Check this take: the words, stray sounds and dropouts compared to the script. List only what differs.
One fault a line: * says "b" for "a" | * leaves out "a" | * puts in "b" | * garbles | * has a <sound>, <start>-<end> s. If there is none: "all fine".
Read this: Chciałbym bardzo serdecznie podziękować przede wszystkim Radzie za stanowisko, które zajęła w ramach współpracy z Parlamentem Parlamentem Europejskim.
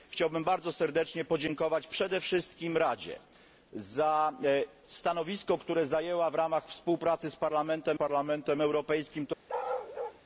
* has a bark, 9.5-10.2 s